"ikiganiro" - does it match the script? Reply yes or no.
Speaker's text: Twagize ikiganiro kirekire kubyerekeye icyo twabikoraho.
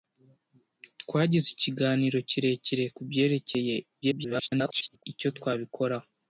yes